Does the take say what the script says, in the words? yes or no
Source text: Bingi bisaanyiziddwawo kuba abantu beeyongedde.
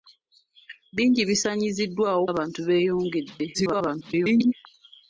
no